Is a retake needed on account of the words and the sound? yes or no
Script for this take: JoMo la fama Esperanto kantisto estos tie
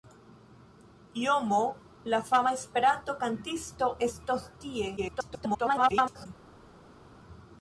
yes